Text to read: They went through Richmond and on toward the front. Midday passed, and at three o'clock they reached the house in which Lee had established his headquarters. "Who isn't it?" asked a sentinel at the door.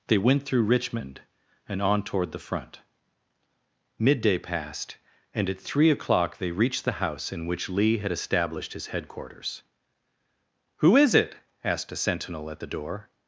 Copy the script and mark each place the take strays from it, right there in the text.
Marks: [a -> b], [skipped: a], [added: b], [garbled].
They went through Richmond and on toward the front. Midday passed, and at three o'clock they reached the house in which Lee had established his headquarters. "Who [isn't -> is] it?" asked a sentinel at the door.